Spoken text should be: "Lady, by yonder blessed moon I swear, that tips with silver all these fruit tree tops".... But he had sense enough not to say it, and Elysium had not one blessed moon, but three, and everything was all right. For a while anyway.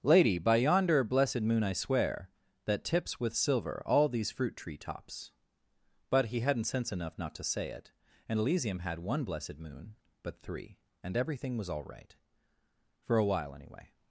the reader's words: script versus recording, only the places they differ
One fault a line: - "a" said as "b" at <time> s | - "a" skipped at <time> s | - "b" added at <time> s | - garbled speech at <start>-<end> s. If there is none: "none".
- "had" said as "hadn't" at 6.4 s
- "not" skipped at 9.0 s